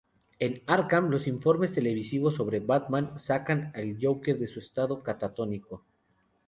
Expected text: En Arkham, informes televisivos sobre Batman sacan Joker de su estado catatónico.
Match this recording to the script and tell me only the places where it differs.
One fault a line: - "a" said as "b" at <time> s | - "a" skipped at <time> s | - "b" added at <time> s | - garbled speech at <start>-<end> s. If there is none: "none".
- "los" added at 1.1 s
- "al" added at 3.8 s